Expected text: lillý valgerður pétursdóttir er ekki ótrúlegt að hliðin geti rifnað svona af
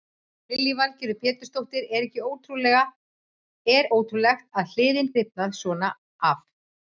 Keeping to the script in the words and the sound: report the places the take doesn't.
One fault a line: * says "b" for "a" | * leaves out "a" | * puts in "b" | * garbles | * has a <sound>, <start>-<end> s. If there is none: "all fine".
* leaves out "ekki"
* leaves out "geti"